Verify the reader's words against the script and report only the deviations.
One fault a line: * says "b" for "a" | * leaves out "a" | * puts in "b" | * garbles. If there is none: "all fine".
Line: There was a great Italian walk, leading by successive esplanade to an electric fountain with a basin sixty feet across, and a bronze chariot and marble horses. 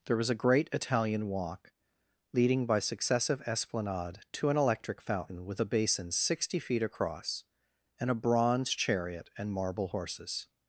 all fine